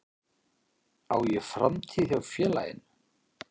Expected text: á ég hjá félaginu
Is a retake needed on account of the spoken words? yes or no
yes